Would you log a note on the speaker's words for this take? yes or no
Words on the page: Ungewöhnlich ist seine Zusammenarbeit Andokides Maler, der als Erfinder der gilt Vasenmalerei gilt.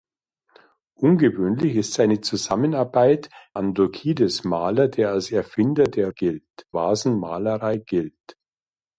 no